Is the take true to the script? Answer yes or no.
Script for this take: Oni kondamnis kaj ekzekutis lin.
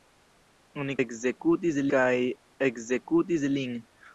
no